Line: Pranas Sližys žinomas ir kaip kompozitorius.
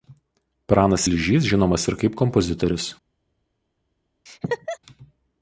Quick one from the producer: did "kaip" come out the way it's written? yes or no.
yes